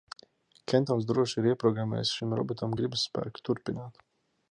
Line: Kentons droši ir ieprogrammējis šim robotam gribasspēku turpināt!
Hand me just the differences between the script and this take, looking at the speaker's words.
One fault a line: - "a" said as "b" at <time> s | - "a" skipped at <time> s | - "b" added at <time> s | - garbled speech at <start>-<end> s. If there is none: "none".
none